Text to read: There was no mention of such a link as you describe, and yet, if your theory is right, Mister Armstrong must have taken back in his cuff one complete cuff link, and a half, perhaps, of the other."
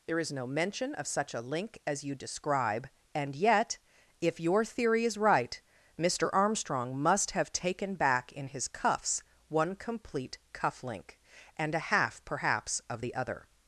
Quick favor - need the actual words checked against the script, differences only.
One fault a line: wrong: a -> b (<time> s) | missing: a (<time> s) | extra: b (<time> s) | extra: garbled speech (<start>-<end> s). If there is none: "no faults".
wrong: was -> is (0.2 s)
wrong: cuff -> cuffs (8.7 s)